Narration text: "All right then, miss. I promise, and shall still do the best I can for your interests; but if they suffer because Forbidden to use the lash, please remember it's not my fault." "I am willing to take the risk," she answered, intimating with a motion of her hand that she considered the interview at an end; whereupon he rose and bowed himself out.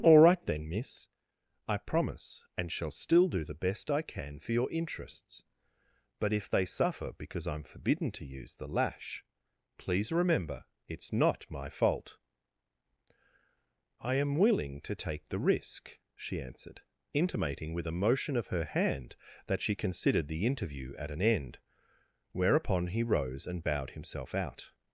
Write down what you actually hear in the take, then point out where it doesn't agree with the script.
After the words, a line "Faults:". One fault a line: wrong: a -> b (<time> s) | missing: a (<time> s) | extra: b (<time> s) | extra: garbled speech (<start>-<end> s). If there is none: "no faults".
"All right then, miss. I promise, and shall still do the best I can for your interests; but if they suffer because I'm forbidden to use the lash, please remember it's not my fault." "I am willing to take the risk," she answered, intimating with a motion of her hand that she considered the interview at an end; whereupon he rose and bowed himself out.
Faults:
extra: I'm (7.5 s)